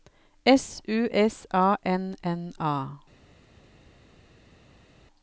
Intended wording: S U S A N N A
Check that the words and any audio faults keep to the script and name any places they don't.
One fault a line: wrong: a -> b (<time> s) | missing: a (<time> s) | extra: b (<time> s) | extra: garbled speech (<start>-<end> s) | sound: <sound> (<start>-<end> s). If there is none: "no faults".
no faults